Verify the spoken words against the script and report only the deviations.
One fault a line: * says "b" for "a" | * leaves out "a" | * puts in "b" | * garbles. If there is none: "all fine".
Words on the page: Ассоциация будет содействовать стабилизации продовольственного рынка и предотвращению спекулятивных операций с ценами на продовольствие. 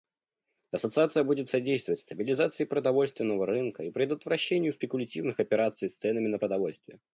all fine